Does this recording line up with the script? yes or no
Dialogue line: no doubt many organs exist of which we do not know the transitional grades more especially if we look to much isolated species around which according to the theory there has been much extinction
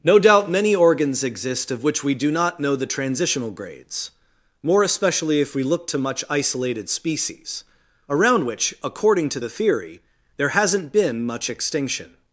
no